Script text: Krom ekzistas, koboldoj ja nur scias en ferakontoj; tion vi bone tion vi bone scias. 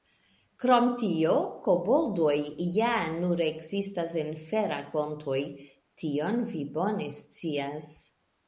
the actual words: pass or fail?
fail